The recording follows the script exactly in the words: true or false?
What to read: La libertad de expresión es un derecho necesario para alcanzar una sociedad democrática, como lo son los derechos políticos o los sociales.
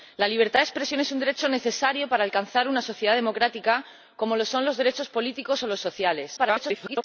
false